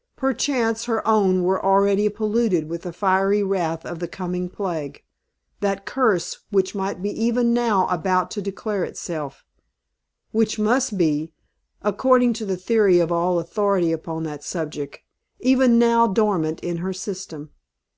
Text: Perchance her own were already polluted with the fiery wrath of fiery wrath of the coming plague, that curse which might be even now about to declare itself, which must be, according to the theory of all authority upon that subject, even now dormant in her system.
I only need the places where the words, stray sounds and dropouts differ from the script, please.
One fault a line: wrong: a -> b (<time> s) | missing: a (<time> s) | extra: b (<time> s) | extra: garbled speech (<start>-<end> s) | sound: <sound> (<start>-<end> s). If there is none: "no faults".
missing: fiery wrath of (4.0 s)